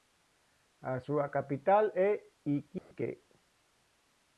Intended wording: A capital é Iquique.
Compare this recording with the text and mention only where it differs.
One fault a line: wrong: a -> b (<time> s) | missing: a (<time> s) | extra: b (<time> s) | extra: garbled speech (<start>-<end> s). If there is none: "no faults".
extra: súa (1.0 s)